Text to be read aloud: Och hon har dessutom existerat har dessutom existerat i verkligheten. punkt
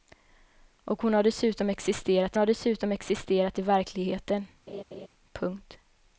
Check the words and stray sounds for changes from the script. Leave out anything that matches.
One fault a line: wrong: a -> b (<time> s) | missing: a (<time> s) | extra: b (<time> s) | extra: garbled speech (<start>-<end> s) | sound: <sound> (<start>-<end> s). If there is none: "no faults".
sound: laugh (4.7-5.1 s)